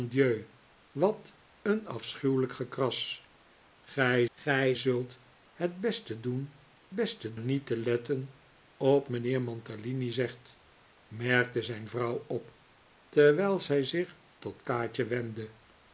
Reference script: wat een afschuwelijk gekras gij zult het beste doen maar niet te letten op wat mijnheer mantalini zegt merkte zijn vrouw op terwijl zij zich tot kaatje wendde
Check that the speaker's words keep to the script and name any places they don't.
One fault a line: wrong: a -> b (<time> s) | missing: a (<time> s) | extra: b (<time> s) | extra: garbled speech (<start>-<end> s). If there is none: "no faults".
extra: gij (4.3 s)
wrong: maar -> beste (6.9 s)
missing: wat (9.1 s)